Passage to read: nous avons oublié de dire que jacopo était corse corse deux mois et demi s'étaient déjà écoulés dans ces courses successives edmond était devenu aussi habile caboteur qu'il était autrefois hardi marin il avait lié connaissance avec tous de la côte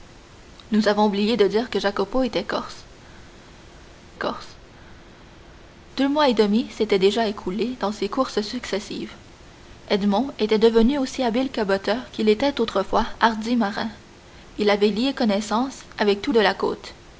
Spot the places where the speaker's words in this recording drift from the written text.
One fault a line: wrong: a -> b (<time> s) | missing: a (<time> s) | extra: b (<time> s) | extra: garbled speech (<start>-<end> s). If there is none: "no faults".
no faults